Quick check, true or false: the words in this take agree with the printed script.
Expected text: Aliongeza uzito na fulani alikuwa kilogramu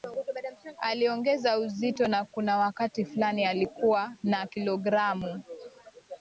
false